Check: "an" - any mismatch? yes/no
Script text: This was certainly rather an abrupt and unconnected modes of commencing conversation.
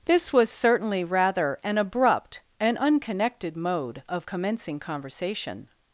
no